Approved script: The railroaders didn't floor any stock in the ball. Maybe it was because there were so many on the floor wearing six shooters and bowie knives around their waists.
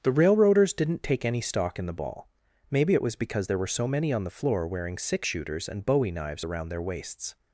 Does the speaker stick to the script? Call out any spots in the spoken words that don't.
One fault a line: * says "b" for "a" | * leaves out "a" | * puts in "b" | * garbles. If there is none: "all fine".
* says "take" for "floor"